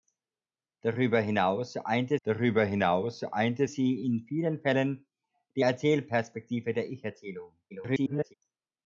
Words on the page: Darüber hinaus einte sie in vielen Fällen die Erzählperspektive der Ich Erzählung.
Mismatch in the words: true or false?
true